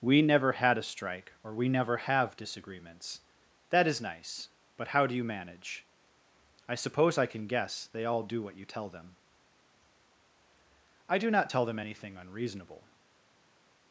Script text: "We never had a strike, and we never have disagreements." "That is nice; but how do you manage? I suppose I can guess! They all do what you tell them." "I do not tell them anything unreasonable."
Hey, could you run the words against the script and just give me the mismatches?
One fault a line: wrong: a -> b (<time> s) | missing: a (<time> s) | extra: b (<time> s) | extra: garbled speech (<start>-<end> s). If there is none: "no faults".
wrong: and -> or (1.4 s)